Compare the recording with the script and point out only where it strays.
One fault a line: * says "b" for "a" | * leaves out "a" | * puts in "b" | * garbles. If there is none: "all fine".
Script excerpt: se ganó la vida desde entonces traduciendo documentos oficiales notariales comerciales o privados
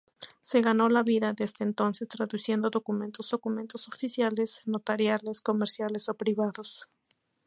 * puts in "documentos"